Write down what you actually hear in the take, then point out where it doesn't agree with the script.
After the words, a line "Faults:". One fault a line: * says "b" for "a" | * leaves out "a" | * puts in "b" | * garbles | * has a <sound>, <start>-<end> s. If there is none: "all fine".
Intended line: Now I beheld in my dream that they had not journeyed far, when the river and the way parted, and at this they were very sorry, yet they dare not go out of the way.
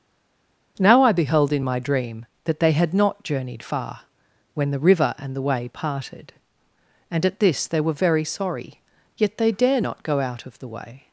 Now I beheld in my dream that they had not journeyed far, when the river and the way parted, and at this they were very sorry, yet they dare not go out of the way.
Faults:
all fine